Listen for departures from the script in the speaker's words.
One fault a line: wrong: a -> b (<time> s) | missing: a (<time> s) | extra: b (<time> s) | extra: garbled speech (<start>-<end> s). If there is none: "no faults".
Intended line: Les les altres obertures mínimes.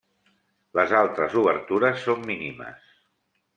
missing: les (0.9 s)
extra: són (2.1 s)